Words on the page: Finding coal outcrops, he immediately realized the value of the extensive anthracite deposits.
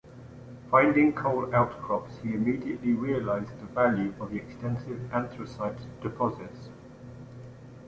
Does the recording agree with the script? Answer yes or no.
yes